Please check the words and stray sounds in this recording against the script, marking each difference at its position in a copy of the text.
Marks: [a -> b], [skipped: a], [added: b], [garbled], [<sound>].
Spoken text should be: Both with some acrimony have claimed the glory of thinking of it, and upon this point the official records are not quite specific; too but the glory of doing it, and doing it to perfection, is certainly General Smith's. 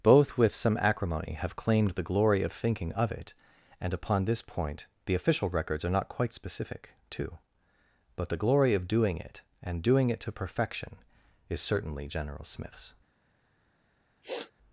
Both with some acrimony have claimed the glory of thinking of it, and upon this point the official records are not quite specific; too but the glory of doing it, and doing it to perfection, is certainly General Smith's. [sniff]